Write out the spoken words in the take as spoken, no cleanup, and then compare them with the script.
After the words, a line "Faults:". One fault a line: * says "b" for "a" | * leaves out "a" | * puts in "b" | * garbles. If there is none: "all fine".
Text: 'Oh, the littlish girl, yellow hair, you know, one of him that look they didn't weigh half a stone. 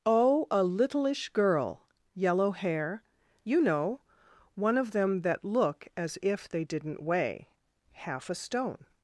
'Oh, a littlish girl, yellow hair, you know, one of them that look as if they didn't weigh half a stone.
Faults:
* says "a" for "the"
* says "them" for "him"
* puts in "as if"